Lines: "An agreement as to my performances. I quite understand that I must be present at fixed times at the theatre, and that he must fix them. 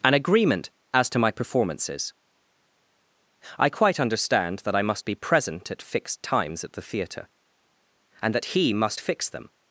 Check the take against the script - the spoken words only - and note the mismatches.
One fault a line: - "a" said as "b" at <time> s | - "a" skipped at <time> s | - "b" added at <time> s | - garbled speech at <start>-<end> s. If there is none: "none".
none